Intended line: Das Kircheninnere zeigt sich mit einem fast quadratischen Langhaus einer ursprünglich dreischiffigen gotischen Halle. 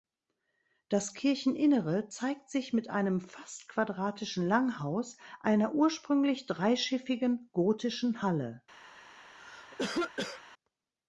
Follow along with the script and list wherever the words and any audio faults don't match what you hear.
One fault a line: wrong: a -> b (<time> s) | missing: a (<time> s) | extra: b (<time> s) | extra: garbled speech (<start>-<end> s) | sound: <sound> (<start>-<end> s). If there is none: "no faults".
sound: cough (9.4-10.4 s)